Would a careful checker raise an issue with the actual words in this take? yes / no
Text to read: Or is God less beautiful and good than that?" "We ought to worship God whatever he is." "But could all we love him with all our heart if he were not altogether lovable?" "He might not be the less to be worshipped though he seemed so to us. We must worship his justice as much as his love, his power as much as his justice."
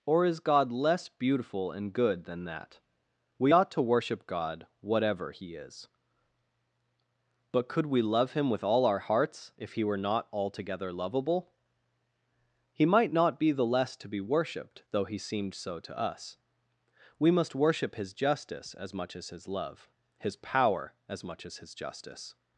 yes